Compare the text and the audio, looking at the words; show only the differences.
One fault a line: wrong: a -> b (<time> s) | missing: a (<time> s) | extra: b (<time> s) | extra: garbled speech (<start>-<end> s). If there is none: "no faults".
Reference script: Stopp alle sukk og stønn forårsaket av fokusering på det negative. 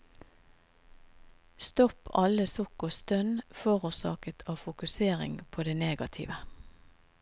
no faults